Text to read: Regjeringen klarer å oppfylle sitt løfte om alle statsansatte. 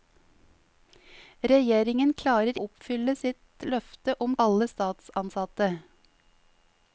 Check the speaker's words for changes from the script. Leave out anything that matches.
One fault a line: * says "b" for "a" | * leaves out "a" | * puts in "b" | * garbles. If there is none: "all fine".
all fine